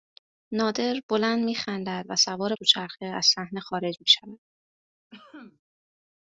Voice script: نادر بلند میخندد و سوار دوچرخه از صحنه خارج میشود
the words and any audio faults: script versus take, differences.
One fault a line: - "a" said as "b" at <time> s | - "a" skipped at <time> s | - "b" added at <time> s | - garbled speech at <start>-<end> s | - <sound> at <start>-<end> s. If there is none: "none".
- cough at 5.1-5.6 s